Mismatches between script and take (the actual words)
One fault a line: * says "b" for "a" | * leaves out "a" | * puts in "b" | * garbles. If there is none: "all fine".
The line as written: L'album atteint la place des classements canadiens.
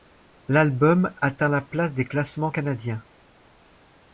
all fine